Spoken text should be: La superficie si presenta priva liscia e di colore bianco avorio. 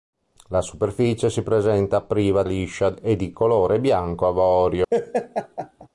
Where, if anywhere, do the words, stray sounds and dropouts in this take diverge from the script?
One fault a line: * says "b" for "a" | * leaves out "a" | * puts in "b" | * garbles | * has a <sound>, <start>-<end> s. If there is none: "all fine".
* has a laugh, 4.9-5.9 s